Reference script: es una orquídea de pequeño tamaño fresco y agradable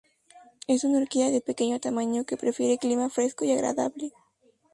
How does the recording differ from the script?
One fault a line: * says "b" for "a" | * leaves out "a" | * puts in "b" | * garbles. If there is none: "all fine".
* puts in "que prefiere clima"